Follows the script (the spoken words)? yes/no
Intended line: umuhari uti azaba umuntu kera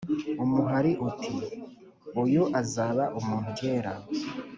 no